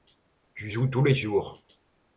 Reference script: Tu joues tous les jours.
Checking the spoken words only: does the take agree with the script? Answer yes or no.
yes